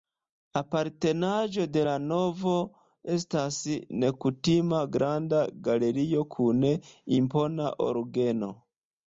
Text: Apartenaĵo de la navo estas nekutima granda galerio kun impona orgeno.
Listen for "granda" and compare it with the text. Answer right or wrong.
right